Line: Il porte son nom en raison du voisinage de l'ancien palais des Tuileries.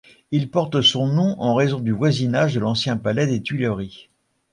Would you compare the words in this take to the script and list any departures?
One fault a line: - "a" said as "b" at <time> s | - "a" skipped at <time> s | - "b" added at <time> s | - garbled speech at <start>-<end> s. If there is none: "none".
none